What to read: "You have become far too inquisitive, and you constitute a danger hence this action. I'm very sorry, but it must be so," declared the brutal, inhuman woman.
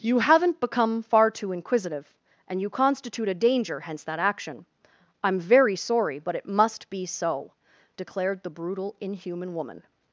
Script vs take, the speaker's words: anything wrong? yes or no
yes